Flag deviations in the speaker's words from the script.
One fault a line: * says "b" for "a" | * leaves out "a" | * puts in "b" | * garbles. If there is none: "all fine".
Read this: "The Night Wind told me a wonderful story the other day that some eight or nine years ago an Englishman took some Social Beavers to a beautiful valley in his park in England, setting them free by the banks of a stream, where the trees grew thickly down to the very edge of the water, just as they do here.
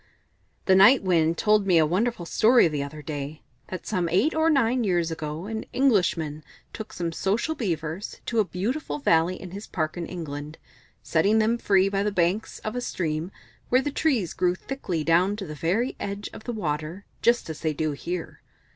all fine